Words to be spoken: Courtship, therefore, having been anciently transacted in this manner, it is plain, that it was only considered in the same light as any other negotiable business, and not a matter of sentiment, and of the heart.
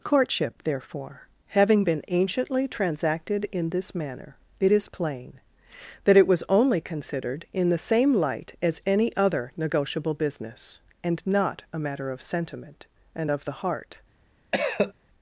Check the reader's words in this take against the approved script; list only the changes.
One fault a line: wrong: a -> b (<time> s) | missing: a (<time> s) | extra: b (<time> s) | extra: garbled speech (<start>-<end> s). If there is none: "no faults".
no faults